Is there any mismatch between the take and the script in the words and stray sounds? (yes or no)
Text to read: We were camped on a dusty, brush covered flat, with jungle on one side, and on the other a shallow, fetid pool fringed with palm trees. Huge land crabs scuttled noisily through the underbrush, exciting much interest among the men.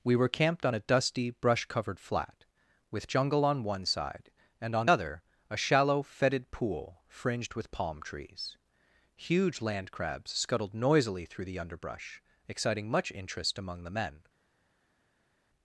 yes